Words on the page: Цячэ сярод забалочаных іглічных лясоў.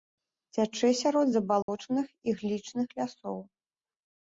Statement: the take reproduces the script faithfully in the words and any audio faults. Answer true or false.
false